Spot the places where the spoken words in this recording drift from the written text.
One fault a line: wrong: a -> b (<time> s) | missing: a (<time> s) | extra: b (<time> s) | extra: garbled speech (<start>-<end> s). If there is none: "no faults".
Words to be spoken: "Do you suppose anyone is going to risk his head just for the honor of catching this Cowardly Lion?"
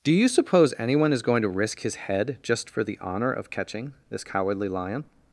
no faults